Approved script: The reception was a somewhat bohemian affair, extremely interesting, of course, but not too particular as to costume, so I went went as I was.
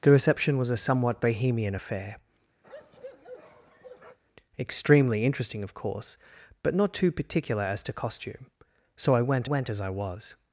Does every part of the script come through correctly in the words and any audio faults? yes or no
no